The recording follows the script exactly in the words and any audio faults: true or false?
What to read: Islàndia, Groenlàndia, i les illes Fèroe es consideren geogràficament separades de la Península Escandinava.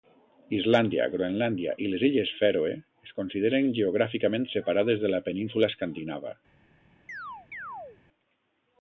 false